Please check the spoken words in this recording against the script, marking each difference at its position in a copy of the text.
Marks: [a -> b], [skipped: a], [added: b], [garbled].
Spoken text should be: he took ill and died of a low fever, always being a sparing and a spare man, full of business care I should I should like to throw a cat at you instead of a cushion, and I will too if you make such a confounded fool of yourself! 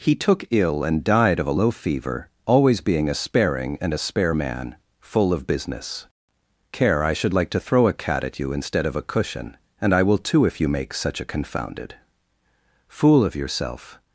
he took ill and died of a low fever, always being a sparing and a spare man, full of business care I should [skipped: I should] like to throw a cat at you instead of a cushion, and I will too if you make such a confounded fool of yourself!